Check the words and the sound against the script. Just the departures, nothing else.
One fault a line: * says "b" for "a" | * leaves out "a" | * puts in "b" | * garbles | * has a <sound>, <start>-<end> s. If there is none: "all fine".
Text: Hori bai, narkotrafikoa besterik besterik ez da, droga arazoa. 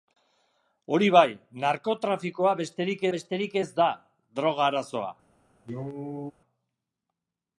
* has a cough, 5.6-6.3 s